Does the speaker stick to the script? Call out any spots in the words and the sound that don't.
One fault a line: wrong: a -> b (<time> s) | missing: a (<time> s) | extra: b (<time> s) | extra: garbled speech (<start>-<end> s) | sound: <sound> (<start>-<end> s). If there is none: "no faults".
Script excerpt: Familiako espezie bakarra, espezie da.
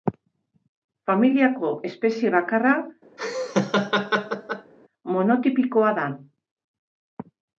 sound: laugh (3.2-4.7 s)
wrong: espezie -> monotipikoa (5.2 s)